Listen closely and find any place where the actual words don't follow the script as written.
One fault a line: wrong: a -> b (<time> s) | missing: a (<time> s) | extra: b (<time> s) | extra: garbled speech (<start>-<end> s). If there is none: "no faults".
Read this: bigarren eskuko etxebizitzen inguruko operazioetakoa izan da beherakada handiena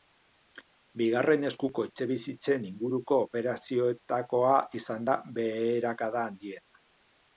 no faults